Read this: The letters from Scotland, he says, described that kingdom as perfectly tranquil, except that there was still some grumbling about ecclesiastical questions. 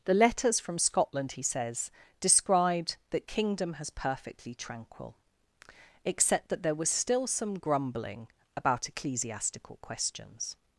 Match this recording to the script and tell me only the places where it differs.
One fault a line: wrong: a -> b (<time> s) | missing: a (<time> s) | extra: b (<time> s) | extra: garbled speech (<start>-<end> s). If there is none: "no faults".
wrong: as -> has (3.7 s)